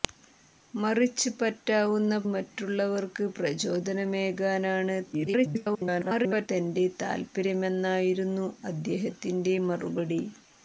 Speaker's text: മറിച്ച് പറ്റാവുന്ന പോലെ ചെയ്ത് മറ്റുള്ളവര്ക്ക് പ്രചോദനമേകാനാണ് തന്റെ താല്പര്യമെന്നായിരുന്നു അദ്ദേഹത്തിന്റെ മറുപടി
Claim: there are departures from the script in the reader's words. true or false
true